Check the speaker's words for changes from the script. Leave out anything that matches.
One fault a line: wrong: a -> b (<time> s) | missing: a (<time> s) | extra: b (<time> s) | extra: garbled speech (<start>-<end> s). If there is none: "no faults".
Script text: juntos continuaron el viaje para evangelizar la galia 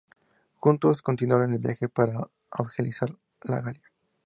no faults